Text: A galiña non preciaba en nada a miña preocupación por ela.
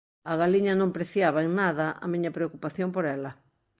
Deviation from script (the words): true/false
false